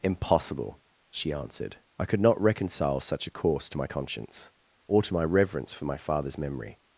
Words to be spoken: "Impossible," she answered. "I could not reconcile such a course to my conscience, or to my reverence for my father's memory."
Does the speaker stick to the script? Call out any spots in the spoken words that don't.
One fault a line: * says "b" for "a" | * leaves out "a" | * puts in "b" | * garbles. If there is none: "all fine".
all fine